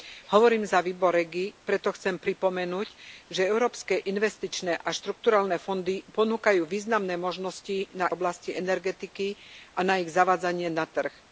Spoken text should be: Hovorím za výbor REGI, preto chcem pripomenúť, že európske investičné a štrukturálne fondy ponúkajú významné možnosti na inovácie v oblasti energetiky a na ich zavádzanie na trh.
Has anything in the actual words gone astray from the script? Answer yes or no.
yes